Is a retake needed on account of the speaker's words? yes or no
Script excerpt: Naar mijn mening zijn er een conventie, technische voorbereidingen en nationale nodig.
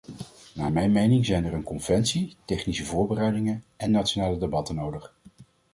yes